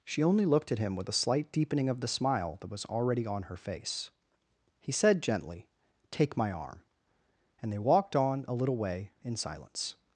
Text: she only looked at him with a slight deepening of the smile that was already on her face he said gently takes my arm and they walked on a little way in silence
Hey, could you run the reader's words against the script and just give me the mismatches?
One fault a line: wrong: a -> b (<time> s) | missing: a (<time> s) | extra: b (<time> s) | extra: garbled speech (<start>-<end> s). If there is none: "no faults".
wrong: takes -> take (6.1 s)